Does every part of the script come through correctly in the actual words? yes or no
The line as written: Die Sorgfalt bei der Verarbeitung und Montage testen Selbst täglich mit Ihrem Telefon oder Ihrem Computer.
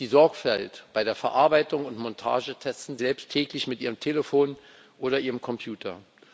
yes